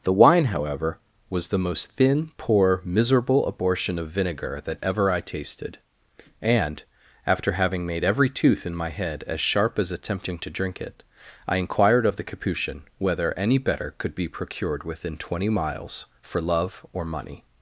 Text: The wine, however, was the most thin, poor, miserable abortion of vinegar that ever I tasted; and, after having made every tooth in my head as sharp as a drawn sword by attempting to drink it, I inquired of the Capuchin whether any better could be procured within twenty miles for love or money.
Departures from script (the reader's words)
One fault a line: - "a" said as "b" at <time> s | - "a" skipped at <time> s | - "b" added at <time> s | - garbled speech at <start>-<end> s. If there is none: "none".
- "a drawn sword by" skipped at 9.9 s